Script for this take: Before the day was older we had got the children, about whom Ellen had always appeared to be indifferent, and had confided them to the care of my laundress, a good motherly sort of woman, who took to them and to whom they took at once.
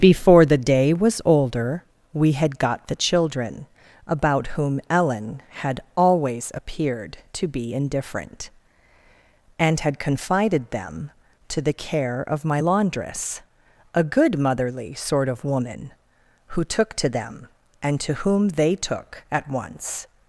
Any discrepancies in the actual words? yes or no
no